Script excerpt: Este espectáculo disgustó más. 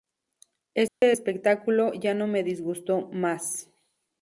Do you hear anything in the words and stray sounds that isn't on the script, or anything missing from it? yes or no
yes